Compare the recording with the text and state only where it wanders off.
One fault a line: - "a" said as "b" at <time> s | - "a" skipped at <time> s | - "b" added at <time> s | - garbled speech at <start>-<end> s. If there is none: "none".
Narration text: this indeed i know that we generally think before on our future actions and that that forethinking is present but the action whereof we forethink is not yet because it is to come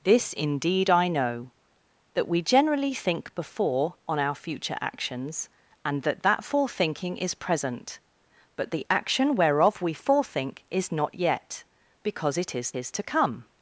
- "is" added at 12.7 s